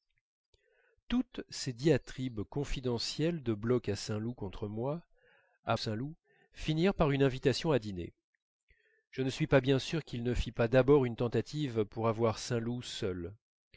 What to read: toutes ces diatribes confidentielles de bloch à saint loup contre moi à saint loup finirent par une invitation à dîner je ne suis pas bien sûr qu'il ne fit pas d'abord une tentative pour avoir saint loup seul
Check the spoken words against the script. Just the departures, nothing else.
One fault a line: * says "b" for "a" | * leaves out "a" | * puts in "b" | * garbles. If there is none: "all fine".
all fine